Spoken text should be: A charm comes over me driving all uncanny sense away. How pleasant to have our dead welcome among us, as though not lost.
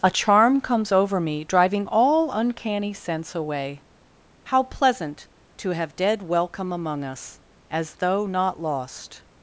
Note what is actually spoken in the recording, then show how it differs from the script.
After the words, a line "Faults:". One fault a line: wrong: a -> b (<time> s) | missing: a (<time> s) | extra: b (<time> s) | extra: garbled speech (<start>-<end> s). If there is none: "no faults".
A charm comes over me driving all uncanny sense away. How pleasant to have dead welcome among us, as though not lost.
Faults:
missing: our (5.9 s)